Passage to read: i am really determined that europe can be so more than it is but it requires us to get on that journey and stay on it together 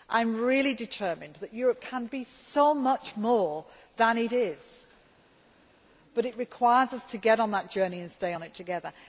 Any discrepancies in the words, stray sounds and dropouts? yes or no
yes